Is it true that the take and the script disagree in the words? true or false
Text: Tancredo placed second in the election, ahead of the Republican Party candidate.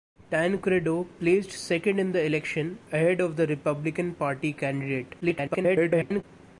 true